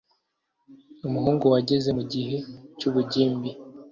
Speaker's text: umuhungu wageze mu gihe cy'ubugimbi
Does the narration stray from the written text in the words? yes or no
no